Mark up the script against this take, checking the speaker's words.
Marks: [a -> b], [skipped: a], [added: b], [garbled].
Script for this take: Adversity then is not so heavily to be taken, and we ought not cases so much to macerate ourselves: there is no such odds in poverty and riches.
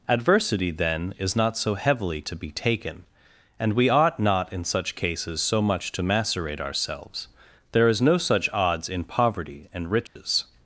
Adversity then is not so heavily to be taken, and we ought not [added: in such] cases so much to macerate ourselves: there is no such odds in poverty and riches.